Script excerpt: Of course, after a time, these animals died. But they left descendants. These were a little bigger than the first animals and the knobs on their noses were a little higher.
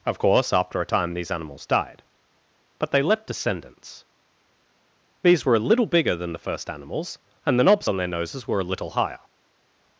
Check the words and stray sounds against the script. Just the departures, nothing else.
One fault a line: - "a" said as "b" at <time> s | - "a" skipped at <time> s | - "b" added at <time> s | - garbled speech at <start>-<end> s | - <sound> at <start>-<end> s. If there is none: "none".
none